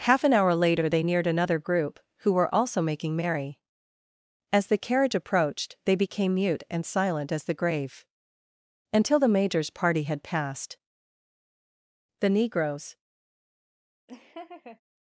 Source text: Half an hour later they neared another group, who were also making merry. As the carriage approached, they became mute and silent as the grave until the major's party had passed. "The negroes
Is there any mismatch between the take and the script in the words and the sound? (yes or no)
yes